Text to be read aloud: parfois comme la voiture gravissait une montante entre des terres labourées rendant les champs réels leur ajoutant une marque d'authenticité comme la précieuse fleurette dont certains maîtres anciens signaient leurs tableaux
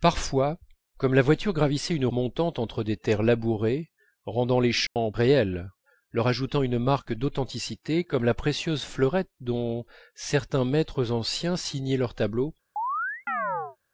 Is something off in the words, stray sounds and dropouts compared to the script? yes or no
yes